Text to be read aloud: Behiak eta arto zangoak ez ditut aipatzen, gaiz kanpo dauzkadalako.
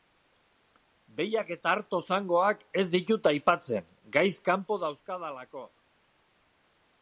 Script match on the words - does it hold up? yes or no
yes